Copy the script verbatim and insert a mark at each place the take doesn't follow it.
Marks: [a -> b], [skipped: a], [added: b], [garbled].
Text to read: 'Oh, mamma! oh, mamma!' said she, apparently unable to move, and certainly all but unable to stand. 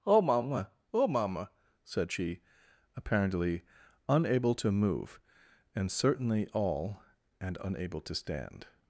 'Oh, mamma! oh, mamma!' said she, apparently unable to move, and certainly all [but -> and] unable to stand.